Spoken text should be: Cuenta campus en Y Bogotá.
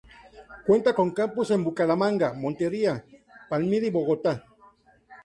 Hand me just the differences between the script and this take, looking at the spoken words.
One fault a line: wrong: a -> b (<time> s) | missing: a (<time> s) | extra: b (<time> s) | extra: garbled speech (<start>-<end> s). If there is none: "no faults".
extra: con (0.9 s)
extra: Bucaramanga Montería Palmira (1.6 s)